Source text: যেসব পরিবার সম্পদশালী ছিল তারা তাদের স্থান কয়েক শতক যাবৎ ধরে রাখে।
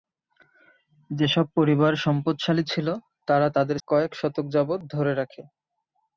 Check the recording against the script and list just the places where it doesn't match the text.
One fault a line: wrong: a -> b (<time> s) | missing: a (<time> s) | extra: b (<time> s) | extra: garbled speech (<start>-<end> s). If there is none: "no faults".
missing: স্থান (3.8 s)